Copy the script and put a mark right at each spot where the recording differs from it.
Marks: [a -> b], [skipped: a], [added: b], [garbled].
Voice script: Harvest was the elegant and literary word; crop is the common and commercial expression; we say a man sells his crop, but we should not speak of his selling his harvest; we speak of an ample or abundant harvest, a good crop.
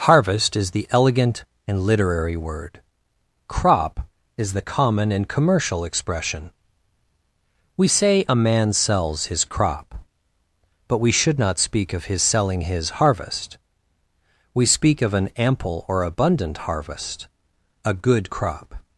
Harvest [was -> is] the elegant and literary word; crop is the common and commercial expression; we say a man sells his crop, but we should not speak of his selling his harvest; we speak of an ample or abundant harvest, a good crop.